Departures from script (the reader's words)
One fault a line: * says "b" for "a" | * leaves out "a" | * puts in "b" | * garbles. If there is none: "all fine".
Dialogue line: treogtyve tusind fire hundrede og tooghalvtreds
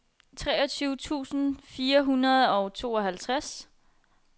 all fine